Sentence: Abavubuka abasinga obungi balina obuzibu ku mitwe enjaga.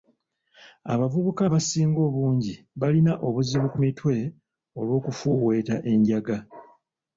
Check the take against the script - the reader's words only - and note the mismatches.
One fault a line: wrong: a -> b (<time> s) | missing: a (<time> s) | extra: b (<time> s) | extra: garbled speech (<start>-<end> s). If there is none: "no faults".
extra: olw'okufuuweeta (4.8 s)